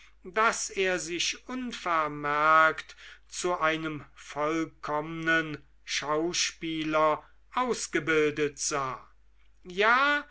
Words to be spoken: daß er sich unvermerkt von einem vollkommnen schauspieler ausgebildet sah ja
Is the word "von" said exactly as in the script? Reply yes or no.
no